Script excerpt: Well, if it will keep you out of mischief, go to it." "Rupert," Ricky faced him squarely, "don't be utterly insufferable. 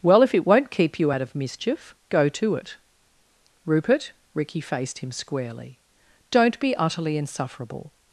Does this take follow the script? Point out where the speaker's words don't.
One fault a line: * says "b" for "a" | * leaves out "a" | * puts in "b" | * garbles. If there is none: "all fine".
* says "won't" for "will"